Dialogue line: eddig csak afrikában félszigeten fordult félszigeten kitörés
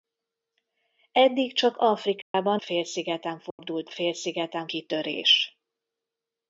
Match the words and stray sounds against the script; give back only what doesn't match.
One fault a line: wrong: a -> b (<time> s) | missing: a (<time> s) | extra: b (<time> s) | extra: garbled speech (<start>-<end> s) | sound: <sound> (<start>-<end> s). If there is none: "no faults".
sound: dropout (2.2-2.3 s)
sound: dropout (3.5-3.6 s)